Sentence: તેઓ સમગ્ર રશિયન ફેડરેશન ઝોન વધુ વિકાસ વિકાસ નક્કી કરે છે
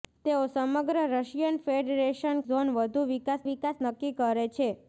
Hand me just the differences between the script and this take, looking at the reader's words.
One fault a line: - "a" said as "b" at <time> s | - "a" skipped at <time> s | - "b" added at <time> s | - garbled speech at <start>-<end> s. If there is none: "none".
none